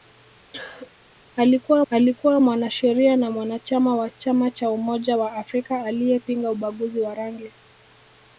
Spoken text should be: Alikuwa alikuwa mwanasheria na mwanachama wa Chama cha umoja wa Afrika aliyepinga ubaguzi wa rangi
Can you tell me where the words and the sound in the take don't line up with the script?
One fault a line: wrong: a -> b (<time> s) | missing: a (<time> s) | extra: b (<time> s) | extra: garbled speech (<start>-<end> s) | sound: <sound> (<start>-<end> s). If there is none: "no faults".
sound: cough (0.5-0.9 s)